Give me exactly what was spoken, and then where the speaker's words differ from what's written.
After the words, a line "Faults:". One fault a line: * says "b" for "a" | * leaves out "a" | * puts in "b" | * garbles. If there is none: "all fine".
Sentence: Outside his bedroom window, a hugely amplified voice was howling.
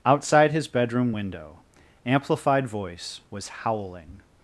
Outside his bedroom window, amplified voice was howling.
Faults:
* leaves out "a hugely"